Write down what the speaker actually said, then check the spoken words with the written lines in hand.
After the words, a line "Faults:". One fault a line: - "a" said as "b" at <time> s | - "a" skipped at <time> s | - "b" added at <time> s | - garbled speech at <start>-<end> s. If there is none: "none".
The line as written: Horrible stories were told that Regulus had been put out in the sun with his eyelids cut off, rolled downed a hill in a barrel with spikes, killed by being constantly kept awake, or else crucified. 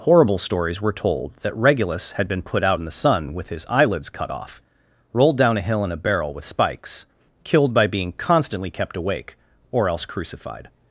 Horrible stories were told that Regulus had been put out in the sun with his eyelids cut off, rolled down a hill in a barrel with spikes, killed by being constantly kept awake, or else crucified.
Faults:
- "downed" said as "down" at 5.4 s